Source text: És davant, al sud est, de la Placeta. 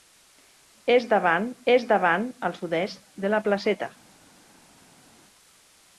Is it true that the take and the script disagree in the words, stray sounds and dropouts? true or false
true